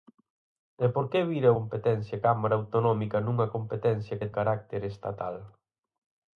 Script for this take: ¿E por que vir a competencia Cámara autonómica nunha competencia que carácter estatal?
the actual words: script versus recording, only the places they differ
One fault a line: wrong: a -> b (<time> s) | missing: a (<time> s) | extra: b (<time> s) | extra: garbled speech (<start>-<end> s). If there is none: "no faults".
no faults